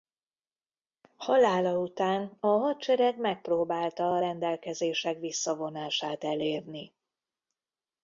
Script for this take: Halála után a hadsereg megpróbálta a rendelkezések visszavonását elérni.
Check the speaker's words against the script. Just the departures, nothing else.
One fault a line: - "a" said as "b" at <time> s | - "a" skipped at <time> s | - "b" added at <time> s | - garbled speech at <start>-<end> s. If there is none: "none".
none